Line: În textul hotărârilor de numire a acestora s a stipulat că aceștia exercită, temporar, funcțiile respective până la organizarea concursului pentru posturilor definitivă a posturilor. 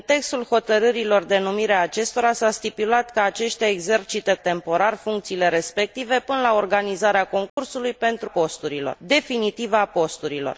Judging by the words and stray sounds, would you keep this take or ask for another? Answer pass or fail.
fail